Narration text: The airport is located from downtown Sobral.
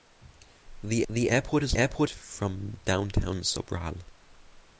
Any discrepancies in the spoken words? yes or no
yes